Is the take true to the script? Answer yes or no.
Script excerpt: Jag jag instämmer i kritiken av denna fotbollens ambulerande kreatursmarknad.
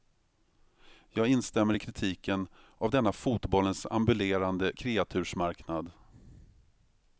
no